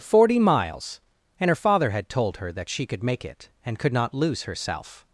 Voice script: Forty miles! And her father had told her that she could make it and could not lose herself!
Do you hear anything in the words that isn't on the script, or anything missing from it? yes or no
no